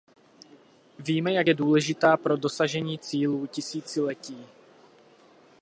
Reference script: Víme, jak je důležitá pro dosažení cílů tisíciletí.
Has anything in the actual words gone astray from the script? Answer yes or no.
no